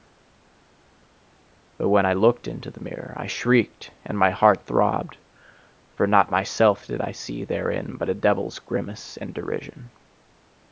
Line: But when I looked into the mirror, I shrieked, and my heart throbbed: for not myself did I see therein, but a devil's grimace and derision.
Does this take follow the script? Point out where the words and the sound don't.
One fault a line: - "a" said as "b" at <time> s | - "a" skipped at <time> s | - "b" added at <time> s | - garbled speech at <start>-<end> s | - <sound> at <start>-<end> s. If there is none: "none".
none